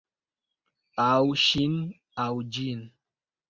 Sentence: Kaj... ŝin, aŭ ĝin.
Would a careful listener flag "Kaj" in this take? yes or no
yes